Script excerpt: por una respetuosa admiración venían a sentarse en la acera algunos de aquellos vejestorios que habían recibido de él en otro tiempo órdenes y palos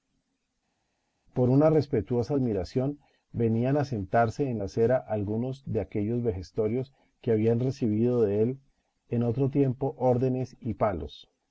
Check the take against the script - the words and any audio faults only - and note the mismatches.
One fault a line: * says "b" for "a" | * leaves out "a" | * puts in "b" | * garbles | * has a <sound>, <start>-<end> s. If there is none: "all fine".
all fine